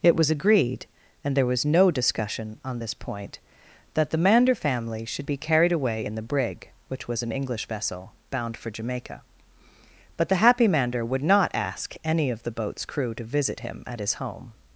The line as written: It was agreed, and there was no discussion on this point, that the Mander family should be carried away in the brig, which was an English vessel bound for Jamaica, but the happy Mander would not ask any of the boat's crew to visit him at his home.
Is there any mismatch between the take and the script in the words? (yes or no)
no